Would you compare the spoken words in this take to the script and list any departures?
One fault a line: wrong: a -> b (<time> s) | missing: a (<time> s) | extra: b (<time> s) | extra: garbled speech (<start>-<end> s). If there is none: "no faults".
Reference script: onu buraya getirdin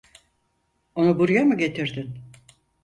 extra: mı (1.4 s)